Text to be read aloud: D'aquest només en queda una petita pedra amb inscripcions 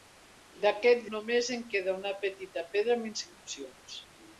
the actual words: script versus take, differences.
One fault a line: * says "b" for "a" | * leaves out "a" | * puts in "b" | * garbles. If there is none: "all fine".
all fine